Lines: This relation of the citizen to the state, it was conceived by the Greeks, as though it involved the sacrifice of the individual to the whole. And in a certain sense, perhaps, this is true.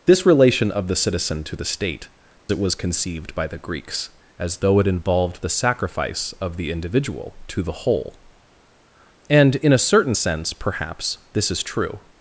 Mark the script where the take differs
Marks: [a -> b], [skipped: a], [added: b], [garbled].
This relation of the citizen to the state, it was conceived by the Greeks, as though it involved the sacrifice of the individual to the whole. And in a certain sense, perhaps, this is true.